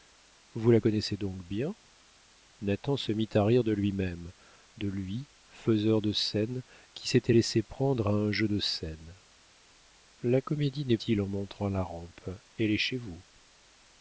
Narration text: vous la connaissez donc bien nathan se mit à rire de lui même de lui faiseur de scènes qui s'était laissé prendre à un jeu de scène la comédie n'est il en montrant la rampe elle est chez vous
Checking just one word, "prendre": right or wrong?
right